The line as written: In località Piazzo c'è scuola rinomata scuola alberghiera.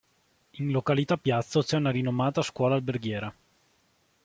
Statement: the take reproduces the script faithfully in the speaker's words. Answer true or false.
false